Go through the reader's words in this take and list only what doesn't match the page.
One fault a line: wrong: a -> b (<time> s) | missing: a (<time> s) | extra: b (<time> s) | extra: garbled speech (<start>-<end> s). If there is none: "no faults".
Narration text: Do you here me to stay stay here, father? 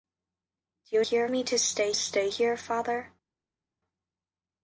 no faults